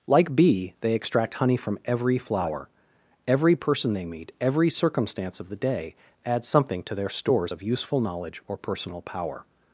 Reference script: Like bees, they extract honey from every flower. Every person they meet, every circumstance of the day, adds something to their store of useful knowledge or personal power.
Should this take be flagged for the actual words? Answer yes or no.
yes